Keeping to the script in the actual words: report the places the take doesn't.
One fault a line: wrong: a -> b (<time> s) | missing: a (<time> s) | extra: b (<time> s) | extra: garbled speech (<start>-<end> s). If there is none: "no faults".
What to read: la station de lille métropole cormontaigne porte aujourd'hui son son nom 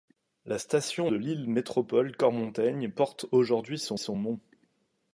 no faults